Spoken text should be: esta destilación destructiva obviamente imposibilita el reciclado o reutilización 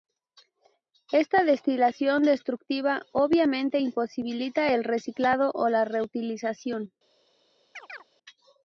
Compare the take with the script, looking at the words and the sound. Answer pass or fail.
fail